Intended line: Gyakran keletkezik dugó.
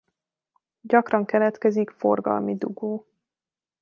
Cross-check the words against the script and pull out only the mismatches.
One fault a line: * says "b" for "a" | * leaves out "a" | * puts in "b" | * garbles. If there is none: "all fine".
* puts in "forgalmi"